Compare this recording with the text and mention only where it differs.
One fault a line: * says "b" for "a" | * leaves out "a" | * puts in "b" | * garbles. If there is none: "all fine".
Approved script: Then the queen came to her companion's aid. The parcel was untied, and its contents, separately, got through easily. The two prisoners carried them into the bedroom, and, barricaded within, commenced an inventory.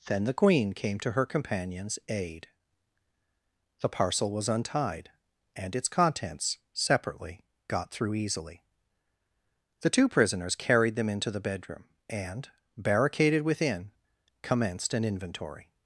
all fine